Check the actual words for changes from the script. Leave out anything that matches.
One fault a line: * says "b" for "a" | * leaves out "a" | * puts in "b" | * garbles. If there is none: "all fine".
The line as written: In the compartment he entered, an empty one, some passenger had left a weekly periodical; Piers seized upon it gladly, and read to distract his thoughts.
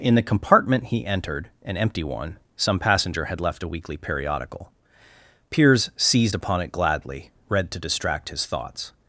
* leaves out "and"